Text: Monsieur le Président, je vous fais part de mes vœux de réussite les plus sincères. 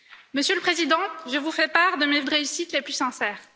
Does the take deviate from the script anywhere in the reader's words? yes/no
yes